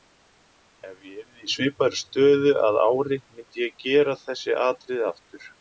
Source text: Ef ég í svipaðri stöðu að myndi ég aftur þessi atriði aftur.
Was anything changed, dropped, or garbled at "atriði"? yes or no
no